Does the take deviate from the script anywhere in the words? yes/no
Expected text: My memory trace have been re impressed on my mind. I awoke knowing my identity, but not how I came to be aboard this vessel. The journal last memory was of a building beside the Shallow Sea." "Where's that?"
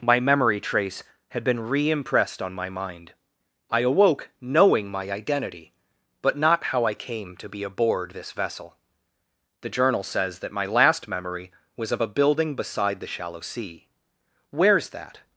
yes